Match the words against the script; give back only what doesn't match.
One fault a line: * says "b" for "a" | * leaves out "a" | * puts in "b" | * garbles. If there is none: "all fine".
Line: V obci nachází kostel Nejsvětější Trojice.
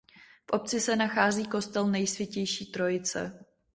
* puts in "se"